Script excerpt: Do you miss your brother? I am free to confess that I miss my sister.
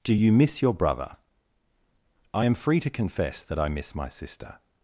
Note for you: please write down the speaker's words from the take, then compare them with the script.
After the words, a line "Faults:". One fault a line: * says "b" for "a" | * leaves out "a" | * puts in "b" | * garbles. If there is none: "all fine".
Do you miss your brother? I am free to confess that I miss my sister.
Faults:
all fine